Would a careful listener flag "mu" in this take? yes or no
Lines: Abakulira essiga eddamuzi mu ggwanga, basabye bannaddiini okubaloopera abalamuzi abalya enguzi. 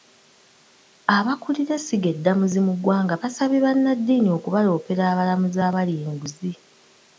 no